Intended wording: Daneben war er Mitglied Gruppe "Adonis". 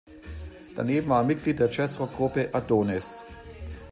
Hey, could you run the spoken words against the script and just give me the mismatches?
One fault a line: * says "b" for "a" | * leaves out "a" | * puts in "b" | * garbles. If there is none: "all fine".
* puts in "der Jazzrock"